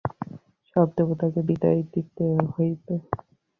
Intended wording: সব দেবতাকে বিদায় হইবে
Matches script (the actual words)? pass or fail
fail